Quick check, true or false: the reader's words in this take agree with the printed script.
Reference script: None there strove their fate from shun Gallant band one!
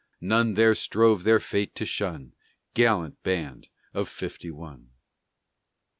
false